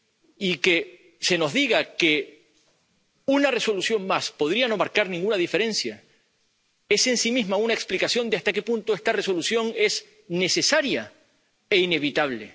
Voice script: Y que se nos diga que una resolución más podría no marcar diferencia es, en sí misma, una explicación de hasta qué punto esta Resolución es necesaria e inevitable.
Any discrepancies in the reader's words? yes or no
yes